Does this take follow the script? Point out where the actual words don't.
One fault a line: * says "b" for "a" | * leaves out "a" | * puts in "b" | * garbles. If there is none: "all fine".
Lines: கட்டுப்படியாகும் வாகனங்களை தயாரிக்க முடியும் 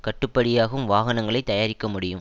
all fine